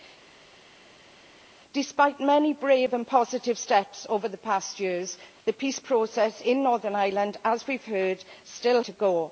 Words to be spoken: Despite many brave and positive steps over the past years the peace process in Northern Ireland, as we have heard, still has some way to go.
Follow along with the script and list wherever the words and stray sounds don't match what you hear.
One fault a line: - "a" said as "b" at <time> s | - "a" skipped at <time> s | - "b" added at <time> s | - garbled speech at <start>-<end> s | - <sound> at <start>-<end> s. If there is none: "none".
- "has some way" skipped at 8.8 s